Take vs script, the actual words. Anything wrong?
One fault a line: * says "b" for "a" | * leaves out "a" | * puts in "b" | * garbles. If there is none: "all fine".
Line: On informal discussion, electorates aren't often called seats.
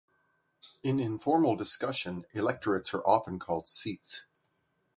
* says "In" for "On"
* says "are" for "aren't"